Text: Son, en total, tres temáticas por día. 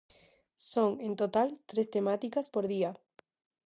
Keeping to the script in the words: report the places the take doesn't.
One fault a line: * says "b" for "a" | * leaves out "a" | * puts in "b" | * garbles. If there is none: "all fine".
all fine